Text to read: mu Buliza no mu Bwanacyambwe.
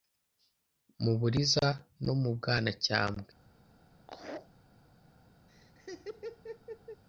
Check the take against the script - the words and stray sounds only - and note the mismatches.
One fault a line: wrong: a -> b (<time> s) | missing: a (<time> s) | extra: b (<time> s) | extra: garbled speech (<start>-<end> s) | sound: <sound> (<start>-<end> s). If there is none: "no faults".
sound: laugh (4.0-4.5 s)
sound: laugh (5.5-7.0 s)